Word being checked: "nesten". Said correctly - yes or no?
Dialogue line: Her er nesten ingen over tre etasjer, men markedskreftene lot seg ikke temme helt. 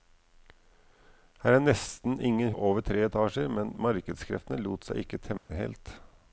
yes